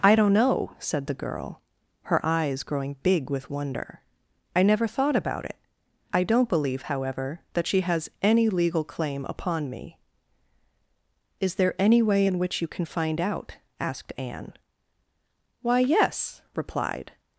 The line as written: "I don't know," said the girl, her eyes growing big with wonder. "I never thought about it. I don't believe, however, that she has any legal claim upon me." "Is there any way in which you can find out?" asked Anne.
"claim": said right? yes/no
yes